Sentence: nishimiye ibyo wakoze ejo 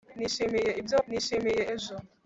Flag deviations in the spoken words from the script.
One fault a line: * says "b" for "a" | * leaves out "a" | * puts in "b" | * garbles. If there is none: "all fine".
* says "nishimiye" for "wakoze"